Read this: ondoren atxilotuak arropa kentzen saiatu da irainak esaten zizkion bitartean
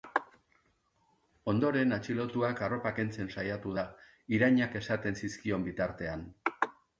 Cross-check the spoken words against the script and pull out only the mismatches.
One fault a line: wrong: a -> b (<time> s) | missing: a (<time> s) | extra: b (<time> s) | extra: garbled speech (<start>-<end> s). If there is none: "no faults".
no faults